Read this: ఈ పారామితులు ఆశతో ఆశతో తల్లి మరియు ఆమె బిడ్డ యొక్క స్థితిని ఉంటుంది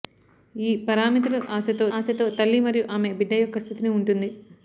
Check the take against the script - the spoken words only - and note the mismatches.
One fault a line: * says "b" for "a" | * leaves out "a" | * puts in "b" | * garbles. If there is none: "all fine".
all fine